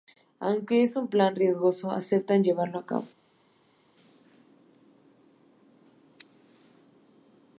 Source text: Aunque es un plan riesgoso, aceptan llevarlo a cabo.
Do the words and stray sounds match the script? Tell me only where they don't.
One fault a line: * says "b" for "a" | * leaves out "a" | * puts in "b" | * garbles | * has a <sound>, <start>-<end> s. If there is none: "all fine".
all fine